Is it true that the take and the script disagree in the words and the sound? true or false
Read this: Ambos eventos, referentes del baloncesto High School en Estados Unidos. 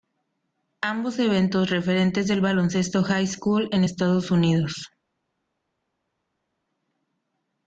false